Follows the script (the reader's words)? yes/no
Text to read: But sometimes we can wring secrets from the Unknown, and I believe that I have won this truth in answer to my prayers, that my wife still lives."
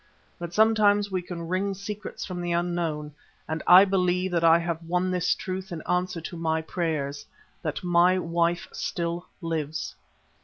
yes